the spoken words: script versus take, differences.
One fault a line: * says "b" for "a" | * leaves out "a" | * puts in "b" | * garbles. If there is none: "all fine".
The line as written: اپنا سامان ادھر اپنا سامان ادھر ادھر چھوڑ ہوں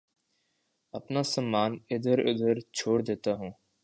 * leaves out "اپنا سامان"
* says "چھوڑ دیتا" for "ادھر چھوڑ"